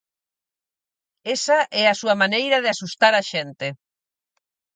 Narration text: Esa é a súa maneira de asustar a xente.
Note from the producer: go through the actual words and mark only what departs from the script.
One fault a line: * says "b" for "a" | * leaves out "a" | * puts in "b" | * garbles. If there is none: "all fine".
all fine